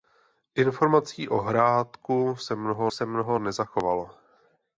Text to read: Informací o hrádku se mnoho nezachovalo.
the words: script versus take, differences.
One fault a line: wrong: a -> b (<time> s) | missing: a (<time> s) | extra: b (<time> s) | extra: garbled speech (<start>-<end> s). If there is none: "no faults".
extra: se mnoho (2.9 s)